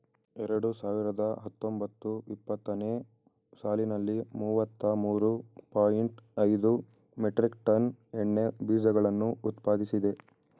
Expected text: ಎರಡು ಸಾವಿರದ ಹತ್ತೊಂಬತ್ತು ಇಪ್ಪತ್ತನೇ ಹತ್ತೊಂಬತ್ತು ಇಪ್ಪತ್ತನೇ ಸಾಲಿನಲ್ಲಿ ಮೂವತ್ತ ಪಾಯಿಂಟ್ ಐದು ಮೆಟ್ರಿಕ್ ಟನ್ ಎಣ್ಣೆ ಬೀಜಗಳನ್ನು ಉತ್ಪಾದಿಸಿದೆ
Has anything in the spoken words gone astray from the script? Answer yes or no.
yes